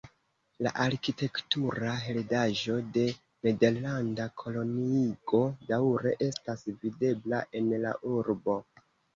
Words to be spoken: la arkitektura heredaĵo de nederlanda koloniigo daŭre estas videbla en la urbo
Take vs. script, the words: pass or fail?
pass